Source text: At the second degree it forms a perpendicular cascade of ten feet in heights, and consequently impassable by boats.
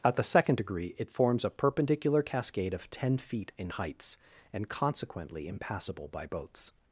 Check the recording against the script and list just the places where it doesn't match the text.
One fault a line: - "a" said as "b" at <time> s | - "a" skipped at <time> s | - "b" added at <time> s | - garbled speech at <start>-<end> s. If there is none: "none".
none